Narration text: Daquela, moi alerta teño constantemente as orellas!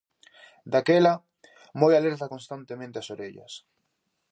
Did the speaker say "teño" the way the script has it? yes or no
no